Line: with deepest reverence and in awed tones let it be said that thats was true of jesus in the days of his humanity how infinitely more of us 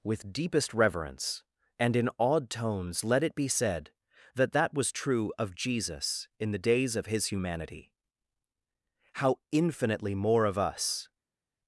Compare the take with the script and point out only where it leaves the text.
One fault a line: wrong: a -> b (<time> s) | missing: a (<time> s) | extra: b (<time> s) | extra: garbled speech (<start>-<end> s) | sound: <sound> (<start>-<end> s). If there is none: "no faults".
wrong: thats -> that (4.5 s)